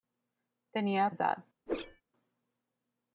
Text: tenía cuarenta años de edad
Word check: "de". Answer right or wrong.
wrong